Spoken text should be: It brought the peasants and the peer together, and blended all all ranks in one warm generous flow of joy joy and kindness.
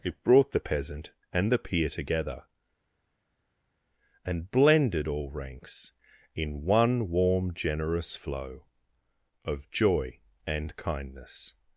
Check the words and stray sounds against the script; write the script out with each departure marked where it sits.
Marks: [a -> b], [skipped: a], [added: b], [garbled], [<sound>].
It brought the [peasants -> peasant] and the peer together, and blended all [skipped: all] ranks in one warm generous flow of joy [skipped: joy] and kindness.